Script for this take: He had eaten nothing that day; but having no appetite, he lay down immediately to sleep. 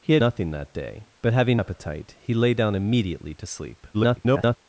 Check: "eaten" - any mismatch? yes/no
yes